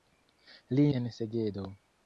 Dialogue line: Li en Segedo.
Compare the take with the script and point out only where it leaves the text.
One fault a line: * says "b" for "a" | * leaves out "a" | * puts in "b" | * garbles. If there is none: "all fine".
all fine